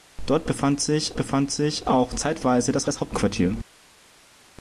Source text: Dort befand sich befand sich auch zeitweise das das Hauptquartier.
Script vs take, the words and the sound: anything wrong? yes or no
no